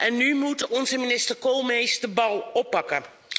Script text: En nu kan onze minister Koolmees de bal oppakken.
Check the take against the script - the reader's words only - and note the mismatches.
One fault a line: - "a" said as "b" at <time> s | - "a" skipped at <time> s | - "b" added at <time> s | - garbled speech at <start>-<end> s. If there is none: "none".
- "kan" said as "moet" at 0.3 s